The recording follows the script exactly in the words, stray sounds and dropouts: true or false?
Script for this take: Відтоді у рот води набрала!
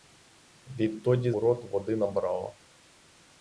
true